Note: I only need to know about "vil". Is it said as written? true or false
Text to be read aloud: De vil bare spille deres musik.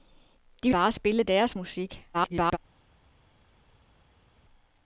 false